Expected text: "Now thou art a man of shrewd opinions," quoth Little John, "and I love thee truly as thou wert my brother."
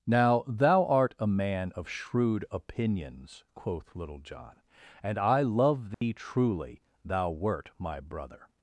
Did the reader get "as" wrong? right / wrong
wrong